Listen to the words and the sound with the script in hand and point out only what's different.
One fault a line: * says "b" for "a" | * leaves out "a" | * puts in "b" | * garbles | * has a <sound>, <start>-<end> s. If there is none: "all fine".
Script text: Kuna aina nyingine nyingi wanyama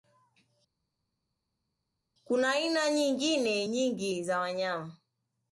* puts in "za"